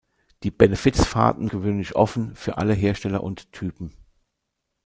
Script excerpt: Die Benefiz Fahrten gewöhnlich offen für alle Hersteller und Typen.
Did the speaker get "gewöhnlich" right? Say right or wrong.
right